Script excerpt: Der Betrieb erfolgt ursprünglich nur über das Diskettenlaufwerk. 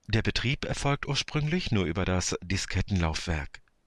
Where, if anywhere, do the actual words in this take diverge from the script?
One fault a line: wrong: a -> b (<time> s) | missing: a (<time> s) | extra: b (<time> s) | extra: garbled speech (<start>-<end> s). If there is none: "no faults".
no faults